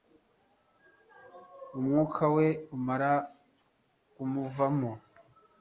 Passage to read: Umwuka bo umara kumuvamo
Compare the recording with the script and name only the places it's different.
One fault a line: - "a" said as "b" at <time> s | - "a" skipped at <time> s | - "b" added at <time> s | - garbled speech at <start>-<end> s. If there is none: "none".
- "bo" said as "we" at 2.4 s